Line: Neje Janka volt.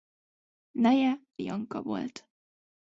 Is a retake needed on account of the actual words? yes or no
no